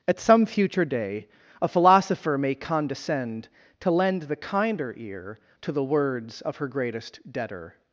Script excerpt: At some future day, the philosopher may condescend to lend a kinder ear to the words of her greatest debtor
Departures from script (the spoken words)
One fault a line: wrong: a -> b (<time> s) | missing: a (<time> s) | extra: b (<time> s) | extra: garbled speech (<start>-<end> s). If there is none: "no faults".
wrong: the -> a (1.6 s)
wrong: a -> the (4.2 s)